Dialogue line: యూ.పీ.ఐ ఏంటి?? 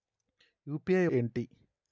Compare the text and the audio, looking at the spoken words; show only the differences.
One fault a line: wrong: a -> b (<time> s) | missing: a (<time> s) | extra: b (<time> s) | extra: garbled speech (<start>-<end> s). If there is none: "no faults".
no faults